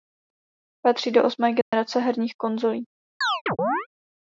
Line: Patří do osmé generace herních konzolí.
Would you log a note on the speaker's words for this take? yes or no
no